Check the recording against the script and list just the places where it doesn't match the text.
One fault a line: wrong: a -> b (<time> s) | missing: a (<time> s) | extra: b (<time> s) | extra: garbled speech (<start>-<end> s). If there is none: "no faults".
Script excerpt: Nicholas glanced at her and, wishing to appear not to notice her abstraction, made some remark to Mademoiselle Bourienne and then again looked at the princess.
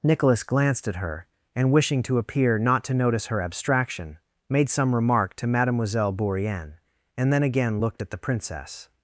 no faults